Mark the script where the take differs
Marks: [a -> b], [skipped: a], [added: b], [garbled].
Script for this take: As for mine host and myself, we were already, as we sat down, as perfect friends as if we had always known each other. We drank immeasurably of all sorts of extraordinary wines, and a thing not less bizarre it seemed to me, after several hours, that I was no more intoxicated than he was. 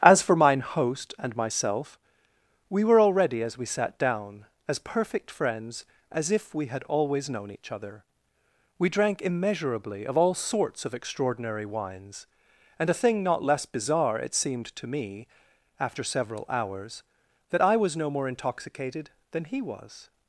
As for mine host and myself, we were already, as we sat down, as perfect friends as if we had always known each other. We drank immeasurably of all sorts of extraordinary wines, and a thing not less bizarre it seemed to me, after several hours, that I was no more intoxicated than he was.